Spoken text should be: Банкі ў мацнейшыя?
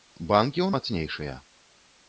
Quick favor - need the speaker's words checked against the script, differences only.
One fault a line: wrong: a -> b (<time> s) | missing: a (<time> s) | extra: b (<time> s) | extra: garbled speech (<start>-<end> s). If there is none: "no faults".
no faults